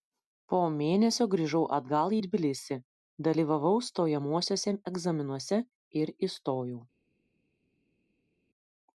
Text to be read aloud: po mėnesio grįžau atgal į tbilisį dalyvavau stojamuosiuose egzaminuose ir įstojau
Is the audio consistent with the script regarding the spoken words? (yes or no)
yes